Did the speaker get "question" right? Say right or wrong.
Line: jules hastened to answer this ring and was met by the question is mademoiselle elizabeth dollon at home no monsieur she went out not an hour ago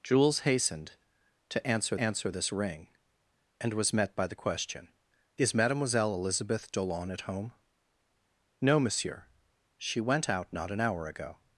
right